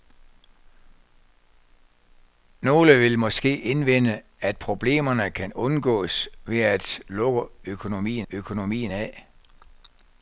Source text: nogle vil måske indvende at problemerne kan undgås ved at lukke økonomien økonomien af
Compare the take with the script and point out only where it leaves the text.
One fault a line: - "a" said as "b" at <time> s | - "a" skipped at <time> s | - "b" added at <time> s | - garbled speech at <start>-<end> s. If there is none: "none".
none